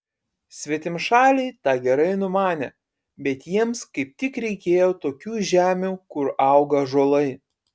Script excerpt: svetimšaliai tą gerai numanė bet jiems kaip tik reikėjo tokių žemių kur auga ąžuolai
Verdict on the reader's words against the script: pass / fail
pass